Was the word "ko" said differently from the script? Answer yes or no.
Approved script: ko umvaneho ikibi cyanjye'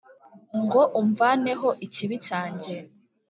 yes